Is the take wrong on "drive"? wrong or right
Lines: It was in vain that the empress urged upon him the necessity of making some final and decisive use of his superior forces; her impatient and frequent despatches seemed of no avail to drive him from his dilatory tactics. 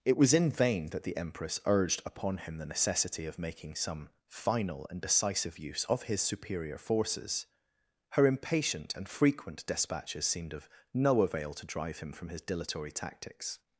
right